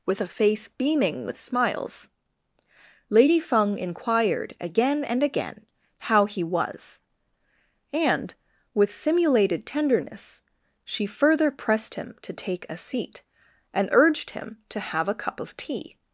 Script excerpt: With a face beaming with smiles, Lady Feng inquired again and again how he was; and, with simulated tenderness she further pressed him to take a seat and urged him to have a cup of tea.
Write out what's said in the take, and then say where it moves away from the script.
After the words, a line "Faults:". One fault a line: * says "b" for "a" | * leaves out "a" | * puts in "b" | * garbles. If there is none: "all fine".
With a face beaming with smiles, Lady Feng inquired again and again how he was; and, with simulated tenderness she further pressed him to take a seat and urged him to have a cup of tea.
Faults:
all fine